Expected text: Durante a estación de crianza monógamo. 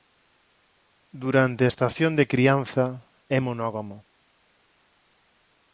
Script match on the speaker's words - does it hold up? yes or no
no